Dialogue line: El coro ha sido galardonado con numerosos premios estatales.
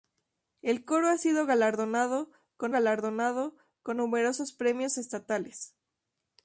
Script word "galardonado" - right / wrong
right